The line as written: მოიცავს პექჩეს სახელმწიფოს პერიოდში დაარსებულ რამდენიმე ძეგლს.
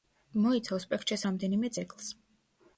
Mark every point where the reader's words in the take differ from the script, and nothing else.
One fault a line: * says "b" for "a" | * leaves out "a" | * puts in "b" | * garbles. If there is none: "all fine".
* leaves out "სახელმწიფოს პერიოდში დაარსებულ"